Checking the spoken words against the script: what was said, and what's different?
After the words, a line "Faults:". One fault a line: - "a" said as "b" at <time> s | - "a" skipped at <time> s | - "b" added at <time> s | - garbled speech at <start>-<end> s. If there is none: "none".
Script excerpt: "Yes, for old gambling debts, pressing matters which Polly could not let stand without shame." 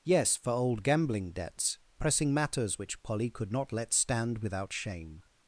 "Yes, for old gambling debts, pressing matters which Polly could not let stand without shame."
Faults:
none